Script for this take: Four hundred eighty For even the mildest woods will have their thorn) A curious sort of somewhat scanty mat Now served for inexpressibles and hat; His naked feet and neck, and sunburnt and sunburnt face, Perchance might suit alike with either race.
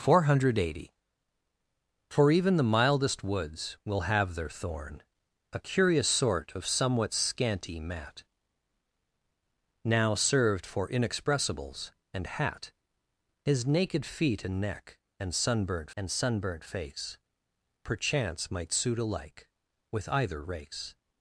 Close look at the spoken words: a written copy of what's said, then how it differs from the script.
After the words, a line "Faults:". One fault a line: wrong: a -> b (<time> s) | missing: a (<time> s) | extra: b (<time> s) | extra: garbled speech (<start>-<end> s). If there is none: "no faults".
Four hundred eighty For even the mildest woods will have their thorn) A curious sort of somewhat scanty mat Now served for inexpressibles and hat; His naked feet and neck, and sunburnt and sunburnt face, Perchance might suit alike with either race.
Faults:
no faults